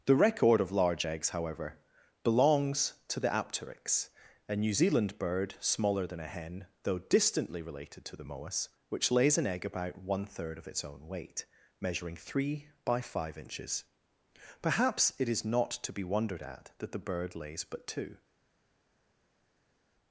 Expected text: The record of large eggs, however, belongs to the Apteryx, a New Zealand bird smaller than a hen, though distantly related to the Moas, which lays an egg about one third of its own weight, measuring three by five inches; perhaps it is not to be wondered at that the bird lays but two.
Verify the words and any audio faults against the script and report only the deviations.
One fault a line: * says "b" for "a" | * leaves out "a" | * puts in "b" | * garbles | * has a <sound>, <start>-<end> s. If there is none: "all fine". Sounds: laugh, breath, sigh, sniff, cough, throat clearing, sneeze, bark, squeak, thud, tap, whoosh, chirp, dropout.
all fine